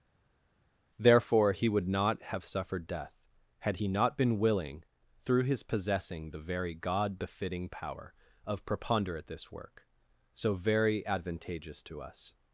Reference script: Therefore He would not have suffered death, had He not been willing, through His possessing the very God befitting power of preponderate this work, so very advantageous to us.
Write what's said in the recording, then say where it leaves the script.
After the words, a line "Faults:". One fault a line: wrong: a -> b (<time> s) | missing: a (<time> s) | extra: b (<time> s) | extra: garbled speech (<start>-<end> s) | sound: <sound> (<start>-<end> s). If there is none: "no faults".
Therefore He would not have suffered death, had He not been willing, through His possessing the very God befitting power of preponderate this work, so very advantageous to us.
Faults:
no faults